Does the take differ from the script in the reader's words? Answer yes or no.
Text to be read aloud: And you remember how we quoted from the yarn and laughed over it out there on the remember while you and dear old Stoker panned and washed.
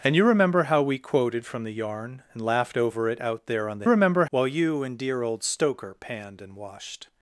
no